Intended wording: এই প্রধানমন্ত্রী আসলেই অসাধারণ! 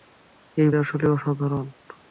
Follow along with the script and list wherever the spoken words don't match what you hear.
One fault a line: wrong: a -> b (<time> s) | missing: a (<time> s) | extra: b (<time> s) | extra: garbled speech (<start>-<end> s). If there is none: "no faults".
missing: প্রধানমন্ত্রী (0.7 s)